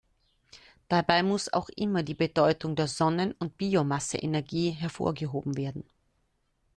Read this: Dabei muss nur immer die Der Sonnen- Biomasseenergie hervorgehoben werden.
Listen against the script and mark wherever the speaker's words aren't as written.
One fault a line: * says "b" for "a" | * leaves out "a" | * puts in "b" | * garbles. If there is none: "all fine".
* says "auch" for "nur"
* puts in "Bedeutung"
* puts in "und"